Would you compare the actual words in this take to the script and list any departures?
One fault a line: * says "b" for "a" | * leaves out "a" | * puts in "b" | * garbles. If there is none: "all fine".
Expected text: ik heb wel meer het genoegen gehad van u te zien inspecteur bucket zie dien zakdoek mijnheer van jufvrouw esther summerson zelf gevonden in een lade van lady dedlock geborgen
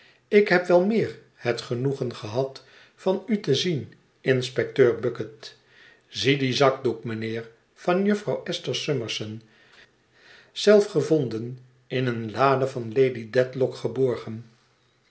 all fine